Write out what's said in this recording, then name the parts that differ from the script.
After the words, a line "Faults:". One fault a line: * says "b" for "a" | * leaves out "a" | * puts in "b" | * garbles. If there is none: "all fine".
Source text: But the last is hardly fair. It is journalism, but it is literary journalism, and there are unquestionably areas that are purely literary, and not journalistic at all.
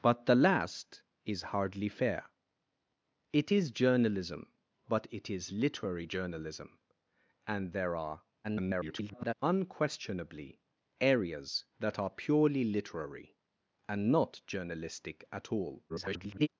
But the last is hardly fair. It is journalism, but it is literary journalism, and there are [garbled] unquestionably areas that are purely literary, and not journalistic at all. [garbled]
Faults:
* garbles
* garbles